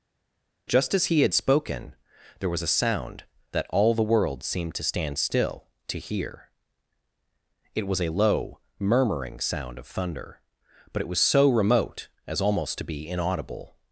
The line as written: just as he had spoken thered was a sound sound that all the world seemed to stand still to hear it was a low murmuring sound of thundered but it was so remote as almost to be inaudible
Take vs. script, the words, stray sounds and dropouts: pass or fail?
fail